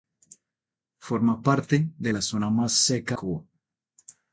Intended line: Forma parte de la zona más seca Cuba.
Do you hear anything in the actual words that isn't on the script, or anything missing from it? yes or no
no